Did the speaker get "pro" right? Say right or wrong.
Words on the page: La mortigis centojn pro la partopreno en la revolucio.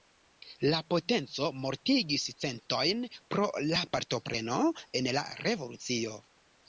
right